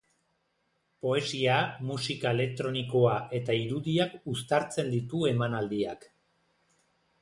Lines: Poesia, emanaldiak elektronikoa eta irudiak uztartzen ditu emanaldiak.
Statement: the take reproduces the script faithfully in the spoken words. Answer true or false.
false